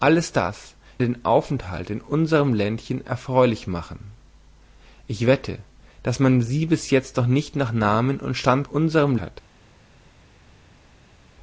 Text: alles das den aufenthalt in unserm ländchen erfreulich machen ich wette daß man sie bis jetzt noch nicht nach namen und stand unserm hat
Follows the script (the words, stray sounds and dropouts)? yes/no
yes